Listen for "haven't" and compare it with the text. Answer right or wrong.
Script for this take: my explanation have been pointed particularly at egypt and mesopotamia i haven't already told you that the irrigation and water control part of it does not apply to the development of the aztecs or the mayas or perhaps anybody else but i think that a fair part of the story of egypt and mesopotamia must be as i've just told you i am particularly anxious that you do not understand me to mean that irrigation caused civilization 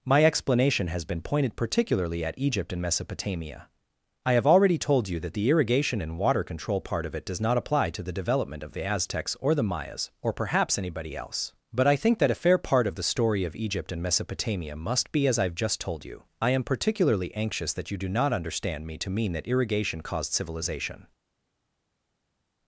wrong